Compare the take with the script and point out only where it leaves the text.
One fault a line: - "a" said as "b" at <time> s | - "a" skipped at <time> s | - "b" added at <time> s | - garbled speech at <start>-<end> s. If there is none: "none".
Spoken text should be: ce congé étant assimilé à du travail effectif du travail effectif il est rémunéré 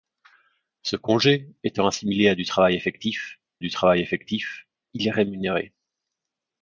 none